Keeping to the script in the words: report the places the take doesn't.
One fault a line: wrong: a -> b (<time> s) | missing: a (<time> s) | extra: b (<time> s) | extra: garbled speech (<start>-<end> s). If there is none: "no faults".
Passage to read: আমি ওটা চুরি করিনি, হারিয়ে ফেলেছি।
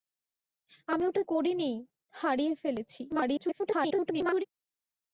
missing: চুরি (1.2 s)
extra: garbled speech (3.1-4.5 s)